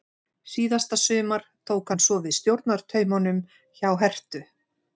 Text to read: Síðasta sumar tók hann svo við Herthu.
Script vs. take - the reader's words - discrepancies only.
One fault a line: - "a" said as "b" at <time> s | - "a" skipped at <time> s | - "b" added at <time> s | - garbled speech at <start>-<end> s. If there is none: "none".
- "stjórnartaumunum hjá" added at 2.4 s